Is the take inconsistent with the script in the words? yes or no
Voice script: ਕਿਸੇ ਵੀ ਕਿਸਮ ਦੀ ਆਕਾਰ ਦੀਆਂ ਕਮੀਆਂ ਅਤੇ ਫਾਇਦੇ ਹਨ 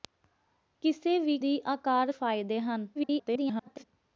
yes